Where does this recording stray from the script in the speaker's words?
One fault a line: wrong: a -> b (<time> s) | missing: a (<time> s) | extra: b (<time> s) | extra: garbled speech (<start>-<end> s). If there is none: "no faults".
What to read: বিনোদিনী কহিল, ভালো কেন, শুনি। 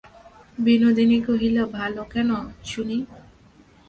no faults